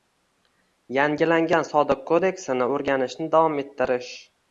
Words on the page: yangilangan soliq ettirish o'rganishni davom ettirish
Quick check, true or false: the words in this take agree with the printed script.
false